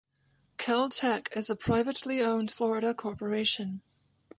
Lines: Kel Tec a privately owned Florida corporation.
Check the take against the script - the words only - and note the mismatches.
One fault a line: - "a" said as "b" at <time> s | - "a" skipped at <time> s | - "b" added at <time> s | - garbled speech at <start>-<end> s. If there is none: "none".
- "is" added at 1.3 s